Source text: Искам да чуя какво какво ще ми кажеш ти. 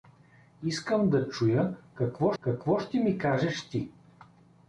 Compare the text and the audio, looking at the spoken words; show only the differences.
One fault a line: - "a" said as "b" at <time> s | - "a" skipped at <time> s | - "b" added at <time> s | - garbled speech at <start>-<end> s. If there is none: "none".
none